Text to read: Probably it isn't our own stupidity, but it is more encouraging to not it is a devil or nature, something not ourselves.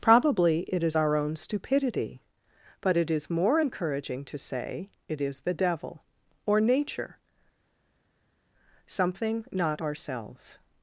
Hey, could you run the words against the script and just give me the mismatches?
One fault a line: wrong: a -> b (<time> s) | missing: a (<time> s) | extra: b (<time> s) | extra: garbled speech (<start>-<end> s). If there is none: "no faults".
wrong: isn't -> is (0.8 s)
wrong: not -> say (4.4 s)
wrong: a -> the (5.4 s)